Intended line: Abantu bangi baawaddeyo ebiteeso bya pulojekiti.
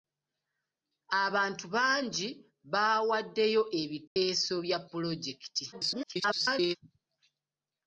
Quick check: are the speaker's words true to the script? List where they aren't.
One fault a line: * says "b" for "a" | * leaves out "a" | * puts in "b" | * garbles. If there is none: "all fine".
* garbles